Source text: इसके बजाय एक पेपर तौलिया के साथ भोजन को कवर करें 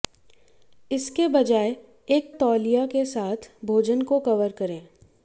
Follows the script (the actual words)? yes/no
no